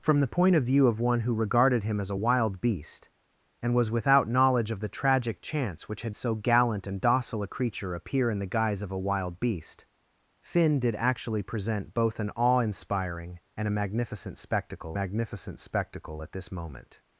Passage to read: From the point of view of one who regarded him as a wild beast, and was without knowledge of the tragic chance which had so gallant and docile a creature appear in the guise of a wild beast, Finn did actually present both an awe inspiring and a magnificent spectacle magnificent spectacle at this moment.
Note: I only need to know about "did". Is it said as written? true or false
true